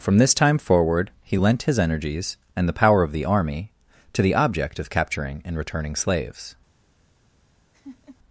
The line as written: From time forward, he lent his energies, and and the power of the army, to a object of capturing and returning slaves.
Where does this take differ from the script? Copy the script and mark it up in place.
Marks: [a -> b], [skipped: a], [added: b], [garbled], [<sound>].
From [added: this] time forward, he lent his energies, and [skipped: and] the power of the army, to [a -> the] object of capturing and returning slaves. [laugh]